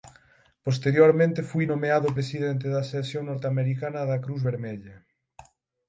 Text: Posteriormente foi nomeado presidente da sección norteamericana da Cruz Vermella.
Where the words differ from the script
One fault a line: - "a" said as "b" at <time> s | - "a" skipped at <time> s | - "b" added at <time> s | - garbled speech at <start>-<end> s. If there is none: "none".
none